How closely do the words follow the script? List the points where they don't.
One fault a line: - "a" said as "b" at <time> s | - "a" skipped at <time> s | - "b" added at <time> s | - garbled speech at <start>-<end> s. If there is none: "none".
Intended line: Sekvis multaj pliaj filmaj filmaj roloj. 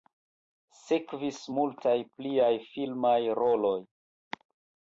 - "filmaj" skipped at 3.2 s